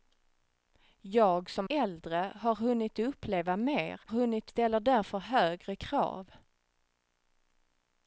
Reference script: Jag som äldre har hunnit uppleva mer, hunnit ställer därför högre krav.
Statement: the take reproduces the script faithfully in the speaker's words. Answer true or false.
true